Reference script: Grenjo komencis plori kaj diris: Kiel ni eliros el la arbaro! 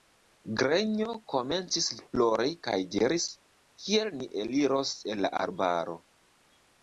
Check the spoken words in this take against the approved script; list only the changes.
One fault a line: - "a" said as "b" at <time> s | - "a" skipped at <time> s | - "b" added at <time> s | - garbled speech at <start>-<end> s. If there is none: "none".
none